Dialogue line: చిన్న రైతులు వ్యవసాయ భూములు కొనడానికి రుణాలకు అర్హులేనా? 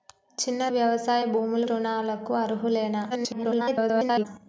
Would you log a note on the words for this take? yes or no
yes